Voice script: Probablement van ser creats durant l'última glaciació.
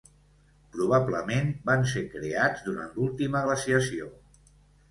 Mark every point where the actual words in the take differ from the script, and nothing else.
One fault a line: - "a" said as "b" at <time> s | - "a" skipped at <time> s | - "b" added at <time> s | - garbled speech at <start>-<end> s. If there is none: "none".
none